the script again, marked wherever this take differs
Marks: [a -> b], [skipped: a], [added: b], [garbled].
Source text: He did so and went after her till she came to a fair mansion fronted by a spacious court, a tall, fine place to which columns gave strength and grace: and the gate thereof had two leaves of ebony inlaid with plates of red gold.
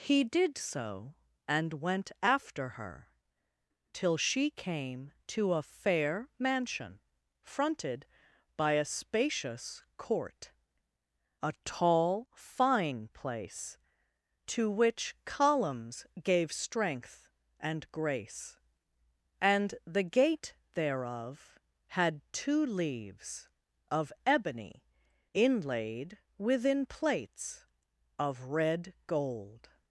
He did so and went after her till she came to a fair mansion fronted by a spacious court, a tall, fine place to which columns gave strength and grace: and the gate thereof had two leaves of ebony inlaid [with -> within] plates of red gold.